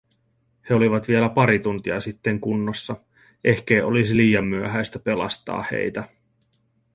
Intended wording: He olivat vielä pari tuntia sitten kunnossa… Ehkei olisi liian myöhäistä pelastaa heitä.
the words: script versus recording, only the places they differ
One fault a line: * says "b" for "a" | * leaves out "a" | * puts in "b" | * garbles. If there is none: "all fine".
all fine